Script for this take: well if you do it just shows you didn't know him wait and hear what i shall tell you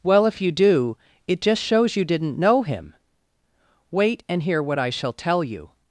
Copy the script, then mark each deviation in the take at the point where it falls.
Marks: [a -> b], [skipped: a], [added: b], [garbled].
well if you do it just shows you didn't know him wait and hear what i shall tell you